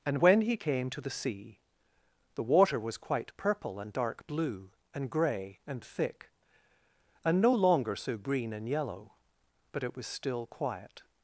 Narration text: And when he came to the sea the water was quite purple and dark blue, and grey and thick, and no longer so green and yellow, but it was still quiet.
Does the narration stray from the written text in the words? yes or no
no